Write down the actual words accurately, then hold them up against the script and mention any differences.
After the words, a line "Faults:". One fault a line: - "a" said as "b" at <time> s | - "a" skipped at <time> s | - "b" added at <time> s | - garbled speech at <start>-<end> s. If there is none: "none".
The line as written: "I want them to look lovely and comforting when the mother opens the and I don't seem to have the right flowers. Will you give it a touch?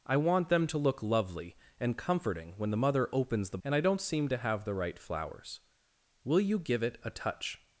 "I want them to look lovely and comforting when the mother opens the and I don't seem to have the right flowers. Will you give it a touch?
Faults:
none